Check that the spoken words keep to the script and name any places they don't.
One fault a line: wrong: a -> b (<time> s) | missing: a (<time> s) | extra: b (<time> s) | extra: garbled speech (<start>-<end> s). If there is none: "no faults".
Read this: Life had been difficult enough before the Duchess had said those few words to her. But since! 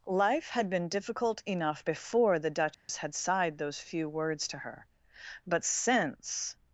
wrong: said -> sighed (3.1 s)